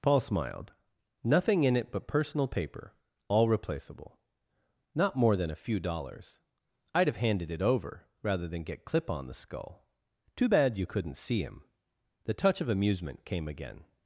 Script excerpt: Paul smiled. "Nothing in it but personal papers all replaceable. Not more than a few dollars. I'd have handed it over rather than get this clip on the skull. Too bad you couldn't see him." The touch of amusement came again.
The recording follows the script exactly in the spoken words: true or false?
false